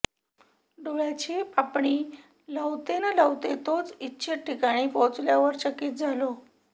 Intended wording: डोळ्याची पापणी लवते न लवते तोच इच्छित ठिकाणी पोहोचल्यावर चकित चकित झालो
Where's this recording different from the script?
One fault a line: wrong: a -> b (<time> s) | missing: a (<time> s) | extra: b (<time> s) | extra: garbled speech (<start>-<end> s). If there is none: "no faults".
missing: चकित (5.9 s)